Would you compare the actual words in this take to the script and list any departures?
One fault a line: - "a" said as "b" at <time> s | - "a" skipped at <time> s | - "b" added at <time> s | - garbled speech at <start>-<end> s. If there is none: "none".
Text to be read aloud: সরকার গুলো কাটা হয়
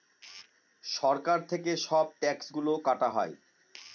- "থেকে সব ট্যাক্স" added at 1.5 s